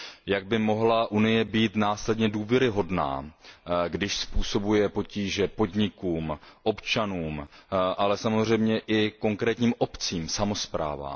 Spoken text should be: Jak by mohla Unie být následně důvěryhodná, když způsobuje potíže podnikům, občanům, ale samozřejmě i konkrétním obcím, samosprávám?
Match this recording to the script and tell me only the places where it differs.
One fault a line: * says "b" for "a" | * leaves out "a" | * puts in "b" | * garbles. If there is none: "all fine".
all fine